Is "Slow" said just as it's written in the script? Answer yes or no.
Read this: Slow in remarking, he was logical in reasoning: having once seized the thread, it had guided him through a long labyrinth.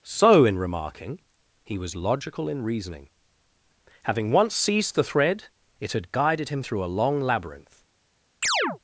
no